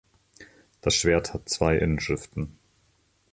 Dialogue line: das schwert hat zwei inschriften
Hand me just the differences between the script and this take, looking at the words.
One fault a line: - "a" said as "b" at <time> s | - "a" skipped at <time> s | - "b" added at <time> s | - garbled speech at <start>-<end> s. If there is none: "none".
none